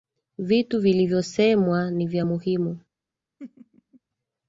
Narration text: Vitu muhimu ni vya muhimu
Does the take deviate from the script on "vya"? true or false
false